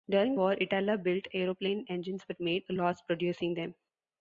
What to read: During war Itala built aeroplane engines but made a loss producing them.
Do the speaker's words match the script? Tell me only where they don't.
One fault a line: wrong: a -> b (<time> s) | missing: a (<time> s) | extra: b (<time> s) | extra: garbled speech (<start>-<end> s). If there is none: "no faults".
no faults